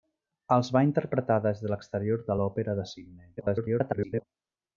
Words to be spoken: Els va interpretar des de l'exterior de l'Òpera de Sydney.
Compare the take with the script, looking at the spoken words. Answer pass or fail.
fail